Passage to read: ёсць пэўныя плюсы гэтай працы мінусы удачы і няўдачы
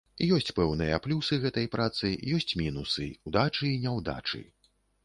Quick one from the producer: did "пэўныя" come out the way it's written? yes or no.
yes